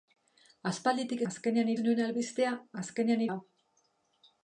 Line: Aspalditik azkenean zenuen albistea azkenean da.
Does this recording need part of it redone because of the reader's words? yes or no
no